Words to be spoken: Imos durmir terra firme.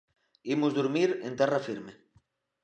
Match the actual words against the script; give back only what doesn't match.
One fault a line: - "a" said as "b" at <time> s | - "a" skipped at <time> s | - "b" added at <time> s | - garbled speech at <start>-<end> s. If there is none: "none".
- "en" added at 1.3 s